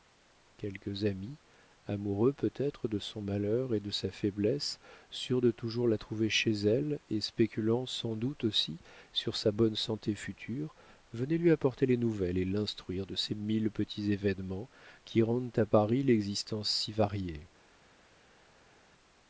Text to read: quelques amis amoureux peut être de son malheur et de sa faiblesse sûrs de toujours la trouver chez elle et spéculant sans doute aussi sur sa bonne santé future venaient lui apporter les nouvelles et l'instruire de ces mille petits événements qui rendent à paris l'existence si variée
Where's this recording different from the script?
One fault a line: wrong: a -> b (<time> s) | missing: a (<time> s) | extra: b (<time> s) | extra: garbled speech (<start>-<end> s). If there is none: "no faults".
no faults